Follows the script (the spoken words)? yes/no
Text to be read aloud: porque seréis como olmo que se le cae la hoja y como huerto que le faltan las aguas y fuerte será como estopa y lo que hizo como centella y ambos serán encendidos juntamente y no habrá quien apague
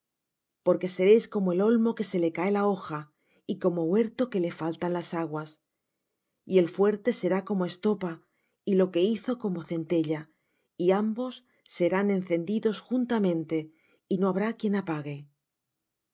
no